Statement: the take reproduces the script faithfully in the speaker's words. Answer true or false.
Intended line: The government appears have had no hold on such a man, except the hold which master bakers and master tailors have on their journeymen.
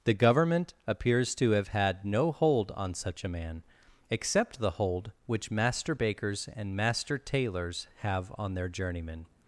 false